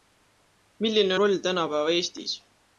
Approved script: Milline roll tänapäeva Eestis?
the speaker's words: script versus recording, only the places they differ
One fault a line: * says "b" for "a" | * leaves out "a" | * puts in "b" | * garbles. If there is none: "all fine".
all fine